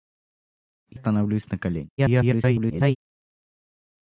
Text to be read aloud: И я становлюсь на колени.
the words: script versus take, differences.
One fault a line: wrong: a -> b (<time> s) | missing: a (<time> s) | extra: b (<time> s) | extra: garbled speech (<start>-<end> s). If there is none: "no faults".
missing: я (1.0 s)
extra: garbled speech (2.0-3.0 s)